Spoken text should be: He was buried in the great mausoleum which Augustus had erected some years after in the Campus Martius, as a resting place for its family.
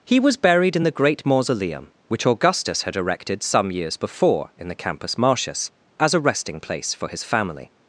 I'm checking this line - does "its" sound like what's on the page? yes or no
no